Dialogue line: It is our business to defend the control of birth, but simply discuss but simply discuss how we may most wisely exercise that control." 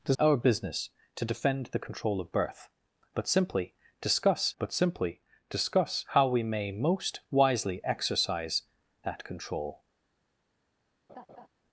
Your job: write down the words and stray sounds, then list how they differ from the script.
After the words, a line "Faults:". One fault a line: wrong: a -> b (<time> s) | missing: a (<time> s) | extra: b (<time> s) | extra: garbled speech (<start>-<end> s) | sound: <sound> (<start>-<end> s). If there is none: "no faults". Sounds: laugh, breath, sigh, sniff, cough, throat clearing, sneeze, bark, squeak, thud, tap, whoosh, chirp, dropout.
It is our business to defend the control of birth, but simply discuss but simply discuss how we may most wisely exercise that control."
Faults:
sound: laugh (11.1-11.5 s)